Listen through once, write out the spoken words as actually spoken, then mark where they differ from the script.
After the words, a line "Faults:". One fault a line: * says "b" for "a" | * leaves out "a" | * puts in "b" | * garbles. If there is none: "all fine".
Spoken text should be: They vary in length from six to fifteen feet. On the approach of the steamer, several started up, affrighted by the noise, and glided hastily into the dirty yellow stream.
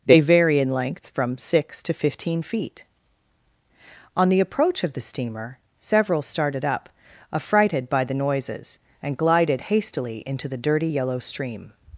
They vary in length from six to fifteen feet. On the approach of the steamer, several started up, affrighted by the noises, and glided hastily into the dirty yellow stream.
Faults:
* says "noises" for "noise"